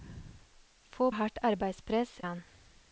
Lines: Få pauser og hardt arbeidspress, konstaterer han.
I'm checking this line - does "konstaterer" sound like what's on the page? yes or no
no